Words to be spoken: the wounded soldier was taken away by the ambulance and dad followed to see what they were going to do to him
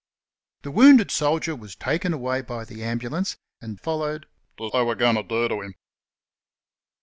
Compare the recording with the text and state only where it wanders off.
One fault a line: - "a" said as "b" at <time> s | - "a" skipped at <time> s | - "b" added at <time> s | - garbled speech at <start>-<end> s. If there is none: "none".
- "dad" skipped at 3.8 s
- "see what" skipped at 4.7 s